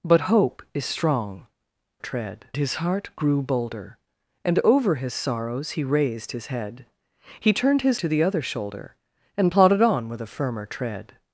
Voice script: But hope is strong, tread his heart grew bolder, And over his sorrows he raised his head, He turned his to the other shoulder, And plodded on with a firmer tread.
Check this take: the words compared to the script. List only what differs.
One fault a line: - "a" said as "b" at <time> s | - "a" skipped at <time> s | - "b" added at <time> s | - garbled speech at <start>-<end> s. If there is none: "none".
none